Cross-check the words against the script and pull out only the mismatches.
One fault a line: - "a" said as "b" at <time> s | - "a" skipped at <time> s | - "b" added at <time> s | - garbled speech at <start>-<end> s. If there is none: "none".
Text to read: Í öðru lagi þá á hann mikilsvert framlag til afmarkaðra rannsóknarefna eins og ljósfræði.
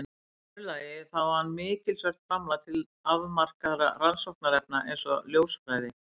none